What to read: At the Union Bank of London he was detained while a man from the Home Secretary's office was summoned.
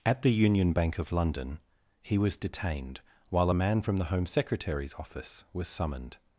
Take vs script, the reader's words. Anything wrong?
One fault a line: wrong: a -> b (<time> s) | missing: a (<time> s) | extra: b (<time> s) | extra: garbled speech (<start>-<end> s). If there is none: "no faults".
no faults